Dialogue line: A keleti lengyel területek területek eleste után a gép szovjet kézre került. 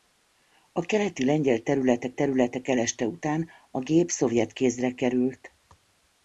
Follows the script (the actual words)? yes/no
yes